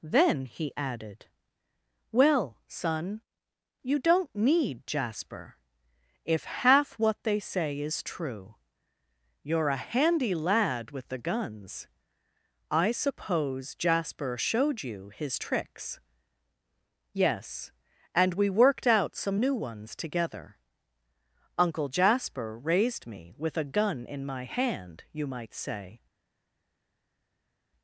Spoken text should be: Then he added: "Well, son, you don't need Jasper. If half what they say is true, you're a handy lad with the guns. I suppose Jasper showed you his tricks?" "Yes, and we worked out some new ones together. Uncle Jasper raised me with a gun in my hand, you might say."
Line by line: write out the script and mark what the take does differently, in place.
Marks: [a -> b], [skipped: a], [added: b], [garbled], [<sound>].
Then he added: "Well, son, you don't need Jasper. If half what they say is true, you're a handy lad with the guns. I suppose Jasper showed you his tricks?" "Yes, and we worked out some new ones together. Uncle Jasper raised me with a gun in my hand, you might say."